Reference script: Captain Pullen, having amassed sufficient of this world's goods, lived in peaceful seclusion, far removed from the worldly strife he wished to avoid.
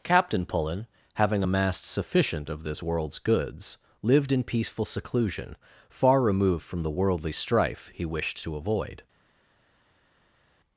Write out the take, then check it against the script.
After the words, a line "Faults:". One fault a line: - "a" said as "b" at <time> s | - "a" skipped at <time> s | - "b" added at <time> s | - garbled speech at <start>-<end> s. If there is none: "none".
Captain Pullen, having amassed sufficient of this world's goods, lived in peaceful seclusion, far removed from the worldly strife he wished to avoid.
Faults:
none